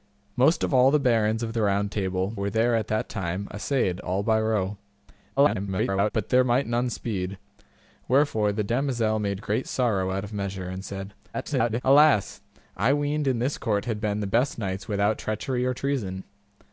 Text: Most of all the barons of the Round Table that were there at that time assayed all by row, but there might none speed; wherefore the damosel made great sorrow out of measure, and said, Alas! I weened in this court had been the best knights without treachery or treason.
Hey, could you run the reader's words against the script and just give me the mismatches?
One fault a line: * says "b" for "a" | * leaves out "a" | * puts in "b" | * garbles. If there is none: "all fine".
* leaves out "that"
* garbles
* garbles